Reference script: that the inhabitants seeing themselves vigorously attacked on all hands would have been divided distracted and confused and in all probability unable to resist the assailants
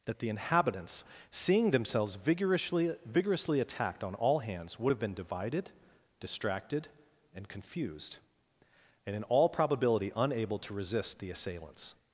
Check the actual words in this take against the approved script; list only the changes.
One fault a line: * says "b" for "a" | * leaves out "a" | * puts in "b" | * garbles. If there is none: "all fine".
* puts in "vigorously"